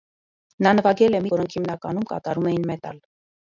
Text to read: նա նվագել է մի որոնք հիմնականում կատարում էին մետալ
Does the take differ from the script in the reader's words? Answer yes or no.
no